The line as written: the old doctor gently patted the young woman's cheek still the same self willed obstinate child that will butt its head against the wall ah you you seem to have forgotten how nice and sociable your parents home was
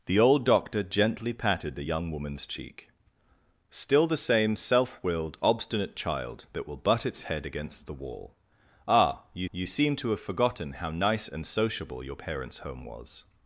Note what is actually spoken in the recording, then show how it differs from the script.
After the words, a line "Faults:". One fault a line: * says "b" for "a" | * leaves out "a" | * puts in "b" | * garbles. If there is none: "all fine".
the old doctor gently patted the young woman's cheek still the same self willed obstinate child that will butt its head against the wall ah you you seem to have forgotten how nice and sociable your parents home was
Faults:
all fine